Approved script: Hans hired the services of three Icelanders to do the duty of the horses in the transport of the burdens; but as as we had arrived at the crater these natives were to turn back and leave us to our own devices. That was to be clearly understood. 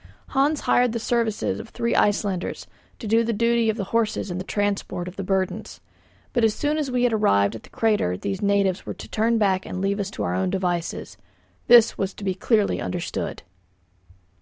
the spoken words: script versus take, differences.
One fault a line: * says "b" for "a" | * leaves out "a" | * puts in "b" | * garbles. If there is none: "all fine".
* puts in "soon"
* says "This" for "That"